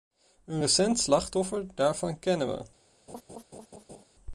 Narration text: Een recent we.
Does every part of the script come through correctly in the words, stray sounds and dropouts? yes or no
no